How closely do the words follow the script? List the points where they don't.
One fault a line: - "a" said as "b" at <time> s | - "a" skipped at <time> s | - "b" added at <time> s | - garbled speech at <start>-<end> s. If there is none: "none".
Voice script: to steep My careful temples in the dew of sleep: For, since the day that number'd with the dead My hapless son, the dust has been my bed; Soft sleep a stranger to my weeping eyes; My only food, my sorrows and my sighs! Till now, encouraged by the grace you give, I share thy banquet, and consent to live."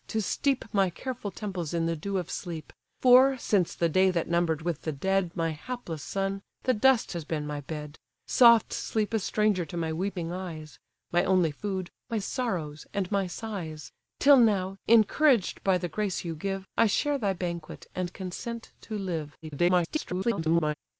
- garbled speech at 19.4-20.7 s